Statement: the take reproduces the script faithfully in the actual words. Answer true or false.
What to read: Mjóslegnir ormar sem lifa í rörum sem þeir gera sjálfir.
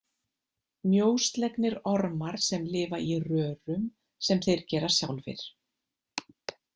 true